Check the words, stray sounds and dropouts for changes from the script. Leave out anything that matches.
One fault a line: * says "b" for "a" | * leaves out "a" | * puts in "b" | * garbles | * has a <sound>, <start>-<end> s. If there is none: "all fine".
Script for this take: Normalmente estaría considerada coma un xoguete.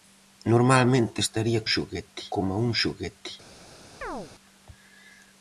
* says "xoguete" for "considerada"
* has a chirp, 4.0-4.3 s